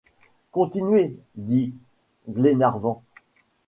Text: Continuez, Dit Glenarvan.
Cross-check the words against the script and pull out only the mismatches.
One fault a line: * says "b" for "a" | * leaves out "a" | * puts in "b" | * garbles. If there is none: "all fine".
all fine